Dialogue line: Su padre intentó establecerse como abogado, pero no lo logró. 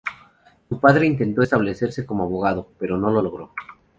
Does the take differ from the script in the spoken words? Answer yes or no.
no